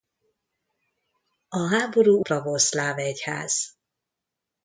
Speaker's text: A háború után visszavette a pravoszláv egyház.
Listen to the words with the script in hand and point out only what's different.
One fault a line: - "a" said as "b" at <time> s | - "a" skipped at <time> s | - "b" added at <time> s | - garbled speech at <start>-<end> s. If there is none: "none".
- "után visszavette a" skipped at 2.2 s